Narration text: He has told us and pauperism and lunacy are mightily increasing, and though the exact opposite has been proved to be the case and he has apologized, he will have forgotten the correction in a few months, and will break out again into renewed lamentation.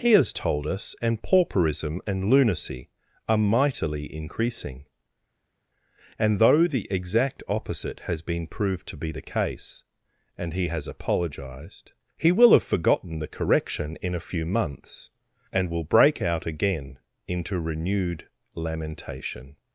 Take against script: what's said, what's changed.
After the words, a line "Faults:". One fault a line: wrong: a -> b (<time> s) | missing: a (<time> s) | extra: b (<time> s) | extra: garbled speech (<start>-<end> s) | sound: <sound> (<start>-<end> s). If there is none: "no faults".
He has told us and pauperism and lunacy are mightily increasing, and though the exact opposite has been proved to be the case and he has apologized, he will have forgotten the correction in a few months, and will break out again into renewed lamentation.
Faults:
no faults